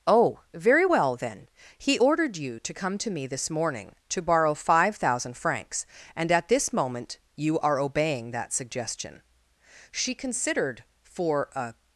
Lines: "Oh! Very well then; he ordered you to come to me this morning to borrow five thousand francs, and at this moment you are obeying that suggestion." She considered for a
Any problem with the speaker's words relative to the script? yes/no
no